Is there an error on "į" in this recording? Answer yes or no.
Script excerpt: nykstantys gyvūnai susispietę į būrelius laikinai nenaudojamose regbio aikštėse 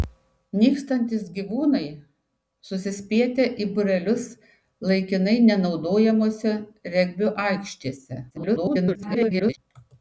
no